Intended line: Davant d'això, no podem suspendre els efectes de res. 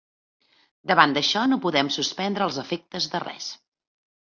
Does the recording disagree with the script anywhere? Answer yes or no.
no